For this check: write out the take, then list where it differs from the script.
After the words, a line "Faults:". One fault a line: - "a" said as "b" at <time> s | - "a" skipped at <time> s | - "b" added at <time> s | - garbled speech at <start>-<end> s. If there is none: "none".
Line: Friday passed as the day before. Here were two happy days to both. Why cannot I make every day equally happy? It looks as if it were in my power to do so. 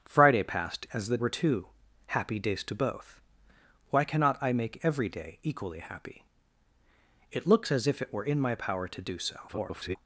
Friday passed as the were two happy days to both. Why cannot I make every day equally happy? It looks as if it were in my power to do so. [garbled]
Faults:
- "day before Here" skipped at 1.2 s
- garbled speech at 9.5-10.0 s